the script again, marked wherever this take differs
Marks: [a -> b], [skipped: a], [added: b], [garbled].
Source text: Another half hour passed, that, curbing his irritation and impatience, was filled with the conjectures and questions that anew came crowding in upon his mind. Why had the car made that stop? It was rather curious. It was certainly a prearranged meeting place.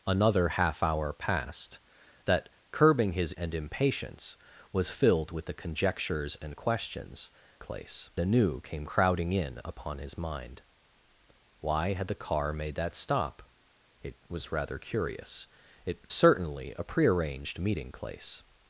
Another half hour passed, that, curbing his [skipped: irritation] and impatience, was filled with the conjectures and questions [that -> place] anew came crowding in upon his mind. Why had the car made that stop? It was rather curious. It [skipped: was] certainly a prearranged meeting place.